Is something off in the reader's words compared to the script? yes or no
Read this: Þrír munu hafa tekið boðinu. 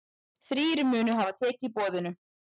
no